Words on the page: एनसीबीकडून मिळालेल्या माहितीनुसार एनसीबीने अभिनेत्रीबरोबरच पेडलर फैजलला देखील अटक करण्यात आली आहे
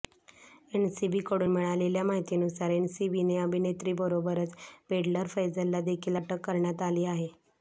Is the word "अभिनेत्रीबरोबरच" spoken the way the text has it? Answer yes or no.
yes